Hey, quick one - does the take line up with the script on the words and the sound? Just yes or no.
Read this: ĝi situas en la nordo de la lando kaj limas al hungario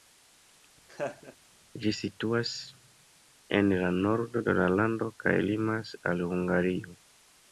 no